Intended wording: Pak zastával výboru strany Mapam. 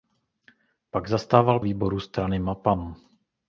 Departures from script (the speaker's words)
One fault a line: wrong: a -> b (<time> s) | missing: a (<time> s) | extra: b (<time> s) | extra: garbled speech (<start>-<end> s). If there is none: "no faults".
no faults